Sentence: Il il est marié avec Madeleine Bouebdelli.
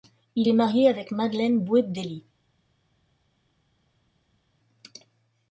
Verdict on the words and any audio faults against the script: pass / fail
fail